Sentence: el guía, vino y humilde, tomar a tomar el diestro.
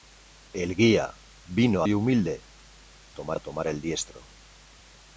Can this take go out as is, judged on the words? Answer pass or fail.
pass